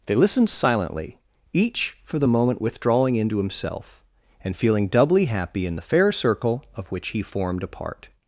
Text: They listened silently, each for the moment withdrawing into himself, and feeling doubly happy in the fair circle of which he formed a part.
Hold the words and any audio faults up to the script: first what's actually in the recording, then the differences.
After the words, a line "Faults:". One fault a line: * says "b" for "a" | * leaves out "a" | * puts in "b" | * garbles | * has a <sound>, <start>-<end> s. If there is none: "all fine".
They listened silently, each for the moment withdrawing into himself, and feeling doubly happy in the fair circle of which he formed a part.
Faults:
all fine